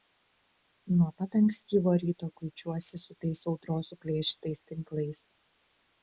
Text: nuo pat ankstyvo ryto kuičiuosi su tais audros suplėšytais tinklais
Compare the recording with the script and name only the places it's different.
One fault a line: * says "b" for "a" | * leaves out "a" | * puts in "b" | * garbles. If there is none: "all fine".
all fine